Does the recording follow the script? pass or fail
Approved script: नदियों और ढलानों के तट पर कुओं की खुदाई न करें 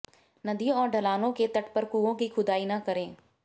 pass